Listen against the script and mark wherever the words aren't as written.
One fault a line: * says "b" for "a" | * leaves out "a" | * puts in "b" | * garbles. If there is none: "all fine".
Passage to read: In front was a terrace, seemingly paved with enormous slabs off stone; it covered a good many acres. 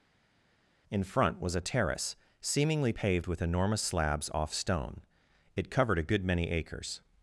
all fine